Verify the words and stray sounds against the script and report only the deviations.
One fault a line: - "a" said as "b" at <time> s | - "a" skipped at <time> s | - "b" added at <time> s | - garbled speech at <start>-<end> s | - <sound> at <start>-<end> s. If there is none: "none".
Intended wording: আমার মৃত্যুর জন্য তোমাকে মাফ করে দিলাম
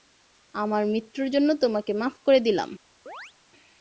- chirp at 3.1-3.3 s